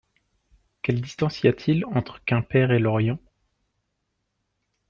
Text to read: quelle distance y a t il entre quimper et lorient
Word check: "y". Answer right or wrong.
right